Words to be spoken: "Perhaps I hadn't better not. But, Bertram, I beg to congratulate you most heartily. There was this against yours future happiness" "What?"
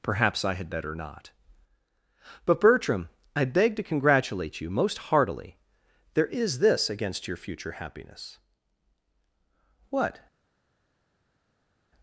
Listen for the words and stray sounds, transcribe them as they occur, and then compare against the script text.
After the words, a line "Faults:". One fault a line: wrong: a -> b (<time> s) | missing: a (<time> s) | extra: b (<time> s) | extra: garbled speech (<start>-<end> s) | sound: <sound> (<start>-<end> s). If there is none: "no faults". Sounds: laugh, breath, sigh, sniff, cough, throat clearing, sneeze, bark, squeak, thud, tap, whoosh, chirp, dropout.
"Perhaps I had better not. But, Bertram, I beg to congratulate you most heartily. There is this against your future happiness" "What?"
Faults:
wrong: hadn't -> had (0.6 s)
wrong: was -> is (6.3 s)
wrong: yours -> your (7.3 s)